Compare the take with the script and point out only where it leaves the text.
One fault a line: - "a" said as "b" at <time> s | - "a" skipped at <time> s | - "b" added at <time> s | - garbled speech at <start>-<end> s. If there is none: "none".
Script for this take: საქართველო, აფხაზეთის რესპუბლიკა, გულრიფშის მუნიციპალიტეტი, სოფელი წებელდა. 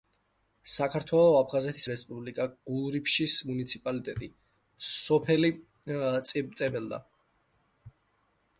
none